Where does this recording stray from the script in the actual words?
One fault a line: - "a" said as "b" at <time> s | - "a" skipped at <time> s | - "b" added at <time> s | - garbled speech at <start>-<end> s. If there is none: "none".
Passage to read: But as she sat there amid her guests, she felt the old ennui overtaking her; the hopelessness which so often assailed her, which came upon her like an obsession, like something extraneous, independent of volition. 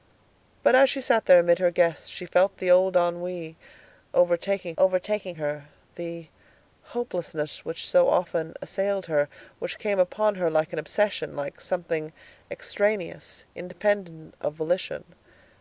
- "overtaking" added at 4.8 s